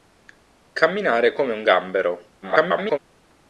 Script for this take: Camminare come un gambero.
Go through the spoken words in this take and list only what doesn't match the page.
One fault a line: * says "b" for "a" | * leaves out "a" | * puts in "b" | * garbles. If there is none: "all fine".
* garbles